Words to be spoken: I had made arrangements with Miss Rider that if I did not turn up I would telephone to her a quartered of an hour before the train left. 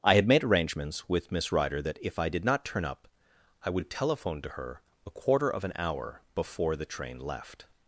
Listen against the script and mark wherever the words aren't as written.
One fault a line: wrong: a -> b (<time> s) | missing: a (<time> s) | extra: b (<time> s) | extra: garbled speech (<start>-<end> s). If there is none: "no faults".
wrong: quartered -> quarter (5.1 s)